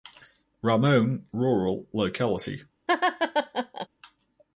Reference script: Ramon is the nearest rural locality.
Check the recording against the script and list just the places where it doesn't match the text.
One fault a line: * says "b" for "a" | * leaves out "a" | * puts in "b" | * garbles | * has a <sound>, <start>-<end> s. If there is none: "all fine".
* leaves out "is the nearest"
* has a laugh, 2.9-3.9 s